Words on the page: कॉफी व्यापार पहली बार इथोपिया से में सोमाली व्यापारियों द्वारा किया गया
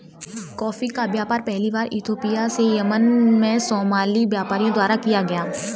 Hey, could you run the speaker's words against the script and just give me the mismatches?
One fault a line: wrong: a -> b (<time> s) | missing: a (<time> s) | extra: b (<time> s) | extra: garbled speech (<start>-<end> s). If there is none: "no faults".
extra: का (0.9 s)
extra: यमन (2.8 s)